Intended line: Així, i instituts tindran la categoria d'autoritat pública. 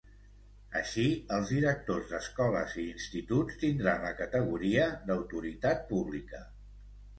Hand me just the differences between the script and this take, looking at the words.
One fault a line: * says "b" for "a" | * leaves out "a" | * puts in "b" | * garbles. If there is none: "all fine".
* puts in "els directors d'escoles"